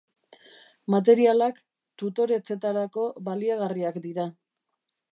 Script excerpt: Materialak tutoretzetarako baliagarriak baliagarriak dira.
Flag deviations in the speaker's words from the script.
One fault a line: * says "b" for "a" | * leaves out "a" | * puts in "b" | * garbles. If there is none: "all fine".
* leaves out "baliagarriak"